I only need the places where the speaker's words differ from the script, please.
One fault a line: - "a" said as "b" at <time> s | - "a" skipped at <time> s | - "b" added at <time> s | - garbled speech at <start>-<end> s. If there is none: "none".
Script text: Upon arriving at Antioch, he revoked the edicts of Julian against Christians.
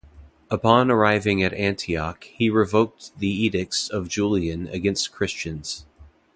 none